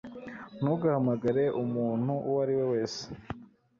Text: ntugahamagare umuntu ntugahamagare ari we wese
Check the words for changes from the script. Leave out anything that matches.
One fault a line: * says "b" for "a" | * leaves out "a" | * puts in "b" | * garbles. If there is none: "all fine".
* says "uwo" for "ntugahamagare"